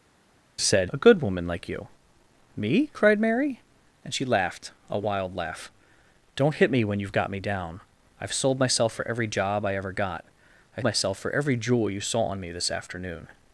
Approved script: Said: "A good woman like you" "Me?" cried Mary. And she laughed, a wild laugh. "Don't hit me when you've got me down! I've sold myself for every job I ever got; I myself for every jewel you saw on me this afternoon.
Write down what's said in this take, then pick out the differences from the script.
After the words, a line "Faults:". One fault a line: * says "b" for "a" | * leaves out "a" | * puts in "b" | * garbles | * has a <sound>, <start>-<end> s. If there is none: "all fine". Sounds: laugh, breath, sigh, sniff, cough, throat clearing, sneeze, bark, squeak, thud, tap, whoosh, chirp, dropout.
Said: "A good woman like you" "Me?" cried Mary. And she laughed, a wild laugh. "Don't hit me when you've got me down! I've sold myself for every job I ever got; I myself for every jewel you saw on me this afternoon.
Faults:
all fine